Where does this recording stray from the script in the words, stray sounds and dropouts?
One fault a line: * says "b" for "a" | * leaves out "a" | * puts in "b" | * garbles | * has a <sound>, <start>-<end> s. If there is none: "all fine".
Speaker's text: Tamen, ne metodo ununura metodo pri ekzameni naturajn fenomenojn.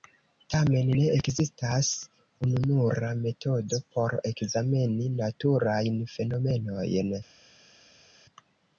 * says "ekzistas" for "metodo"
* says "por" for "pri"